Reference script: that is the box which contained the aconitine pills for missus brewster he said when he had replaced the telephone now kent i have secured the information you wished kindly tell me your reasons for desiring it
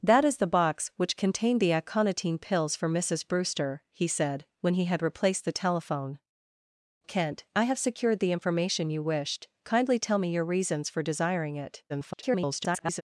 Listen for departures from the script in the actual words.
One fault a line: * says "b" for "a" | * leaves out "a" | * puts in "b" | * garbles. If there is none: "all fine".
* leaves out "now"
* garbles